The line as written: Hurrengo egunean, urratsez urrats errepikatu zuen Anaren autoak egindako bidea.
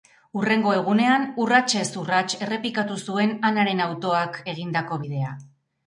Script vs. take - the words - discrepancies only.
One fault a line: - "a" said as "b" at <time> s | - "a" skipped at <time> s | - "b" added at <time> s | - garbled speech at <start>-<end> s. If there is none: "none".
none